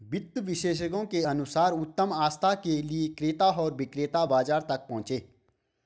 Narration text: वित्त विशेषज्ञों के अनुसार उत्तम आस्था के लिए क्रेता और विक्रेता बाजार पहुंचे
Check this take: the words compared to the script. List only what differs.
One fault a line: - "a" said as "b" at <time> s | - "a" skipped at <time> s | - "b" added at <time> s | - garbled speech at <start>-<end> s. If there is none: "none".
- "तक" added at 4.6 s